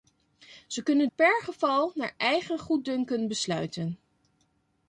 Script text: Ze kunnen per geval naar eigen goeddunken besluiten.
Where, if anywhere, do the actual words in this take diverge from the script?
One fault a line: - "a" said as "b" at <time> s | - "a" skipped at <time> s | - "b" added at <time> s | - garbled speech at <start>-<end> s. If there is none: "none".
none